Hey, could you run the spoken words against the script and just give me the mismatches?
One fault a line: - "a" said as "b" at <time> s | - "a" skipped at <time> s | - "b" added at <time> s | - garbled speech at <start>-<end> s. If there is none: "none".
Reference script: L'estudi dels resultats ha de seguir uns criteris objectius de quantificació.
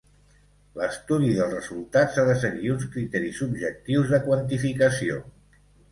none